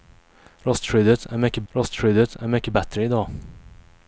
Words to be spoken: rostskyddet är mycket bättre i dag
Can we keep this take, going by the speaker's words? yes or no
no